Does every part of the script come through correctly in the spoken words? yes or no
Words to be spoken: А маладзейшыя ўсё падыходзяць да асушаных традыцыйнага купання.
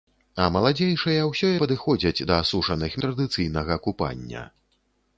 yes